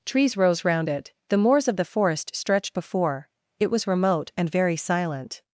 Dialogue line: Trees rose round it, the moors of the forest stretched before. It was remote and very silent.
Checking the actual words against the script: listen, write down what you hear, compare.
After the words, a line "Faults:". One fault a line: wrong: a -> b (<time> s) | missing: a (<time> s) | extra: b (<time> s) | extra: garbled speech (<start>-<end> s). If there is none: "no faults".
Trees rose round it, the moors of the forest stretched before. It was remote and very silent.
Faults:
no faults